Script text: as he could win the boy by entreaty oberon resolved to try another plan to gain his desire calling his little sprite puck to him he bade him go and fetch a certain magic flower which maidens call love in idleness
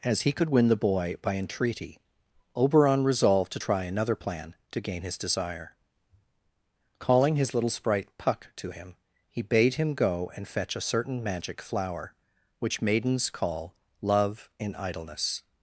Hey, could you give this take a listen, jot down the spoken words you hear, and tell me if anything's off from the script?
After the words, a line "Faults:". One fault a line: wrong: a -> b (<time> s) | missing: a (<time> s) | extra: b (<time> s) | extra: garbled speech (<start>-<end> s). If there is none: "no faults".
as he could win the boy by entreaty oberon resolved to try another plan to gain his desire calling his little sprite puck to him he bade him go and fetch a certain magic flower which maidens call love in idleness
Faults:
no faults